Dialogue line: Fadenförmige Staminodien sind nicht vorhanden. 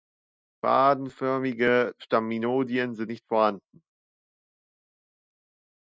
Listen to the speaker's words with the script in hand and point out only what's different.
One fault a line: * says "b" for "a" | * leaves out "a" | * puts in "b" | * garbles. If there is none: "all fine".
all fine